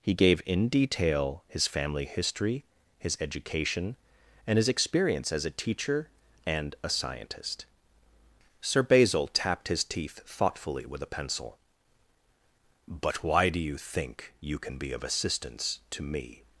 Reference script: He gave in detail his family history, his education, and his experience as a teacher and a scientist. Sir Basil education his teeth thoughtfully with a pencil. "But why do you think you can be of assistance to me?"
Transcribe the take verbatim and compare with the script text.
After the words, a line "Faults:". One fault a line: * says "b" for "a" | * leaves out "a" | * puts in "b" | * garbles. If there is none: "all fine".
He gave in detail his family history, his education, and his experience as a teacher and a scientist. Sir Basil tapped his teeth thoughtfully with a pencil. "But why do you think you can be of assistance to me?"
Faults:
* says "tapped" for "education"